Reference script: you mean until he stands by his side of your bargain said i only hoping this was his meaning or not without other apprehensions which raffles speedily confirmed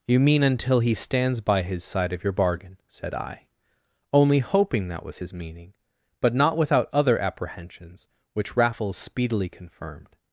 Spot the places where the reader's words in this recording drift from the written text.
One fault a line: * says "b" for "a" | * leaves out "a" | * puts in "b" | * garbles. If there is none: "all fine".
* says "that" for "this"
* says "but" for "or"